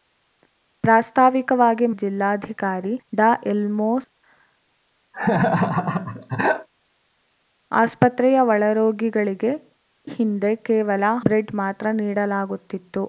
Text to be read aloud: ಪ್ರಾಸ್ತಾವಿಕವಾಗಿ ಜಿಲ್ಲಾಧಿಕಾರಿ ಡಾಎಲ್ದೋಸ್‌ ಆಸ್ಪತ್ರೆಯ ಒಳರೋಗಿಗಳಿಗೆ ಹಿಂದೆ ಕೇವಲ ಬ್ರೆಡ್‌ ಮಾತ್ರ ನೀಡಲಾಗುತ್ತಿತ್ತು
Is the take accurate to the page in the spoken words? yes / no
yes